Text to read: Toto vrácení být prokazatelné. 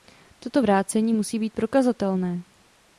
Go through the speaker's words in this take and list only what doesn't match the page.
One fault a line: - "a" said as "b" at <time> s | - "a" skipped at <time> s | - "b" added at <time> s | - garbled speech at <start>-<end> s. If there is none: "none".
- "musí" added at 1.1 s